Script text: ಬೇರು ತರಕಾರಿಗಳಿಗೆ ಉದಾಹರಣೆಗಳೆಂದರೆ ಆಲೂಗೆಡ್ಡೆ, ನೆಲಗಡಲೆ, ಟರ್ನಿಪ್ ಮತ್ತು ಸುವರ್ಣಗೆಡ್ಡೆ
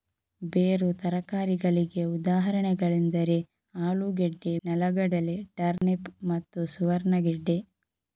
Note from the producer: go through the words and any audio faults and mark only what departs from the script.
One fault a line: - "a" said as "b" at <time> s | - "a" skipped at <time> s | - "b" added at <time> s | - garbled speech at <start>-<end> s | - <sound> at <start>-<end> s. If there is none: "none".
- dropout at 5.8-5.8 s